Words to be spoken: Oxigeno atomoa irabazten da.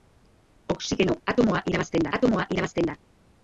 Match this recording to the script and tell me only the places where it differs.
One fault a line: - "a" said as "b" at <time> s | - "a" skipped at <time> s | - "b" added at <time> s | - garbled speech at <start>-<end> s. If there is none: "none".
- "atomoa irabazten" added at 2.2 s